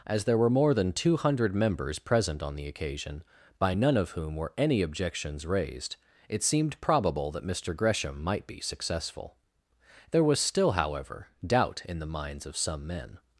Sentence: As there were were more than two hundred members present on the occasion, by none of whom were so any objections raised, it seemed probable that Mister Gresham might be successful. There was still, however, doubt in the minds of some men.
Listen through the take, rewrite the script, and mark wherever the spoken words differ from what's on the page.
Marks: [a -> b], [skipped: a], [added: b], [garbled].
As there were [skipped: were] more than two hundred members present on the occasion, by none of whom were [skipped: so] any objections raised, it seemed probable that Mister Gresham might be successful. There was still, however, doubt in the minds of some men.